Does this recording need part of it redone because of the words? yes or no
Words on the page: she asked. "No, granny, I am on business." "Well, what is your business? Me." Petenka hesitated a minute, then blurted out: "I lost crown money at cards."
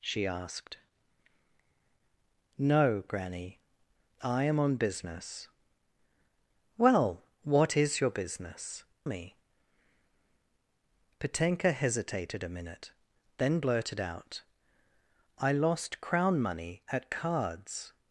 no